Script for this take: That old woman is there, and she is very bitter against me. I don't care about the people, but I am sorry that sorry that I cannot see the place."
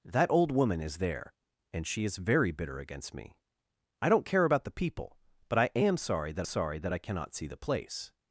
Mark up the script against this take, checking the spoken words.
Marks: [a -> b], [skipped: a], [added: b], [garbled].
That old woman is there, and she is very bitter against me. I don't care about the people, but I am sorry that sorry that I cannot see the place."